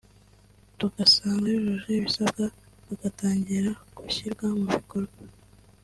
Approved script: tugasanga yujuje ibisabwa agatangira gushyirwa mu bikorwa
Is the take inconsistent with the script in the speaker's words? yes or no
no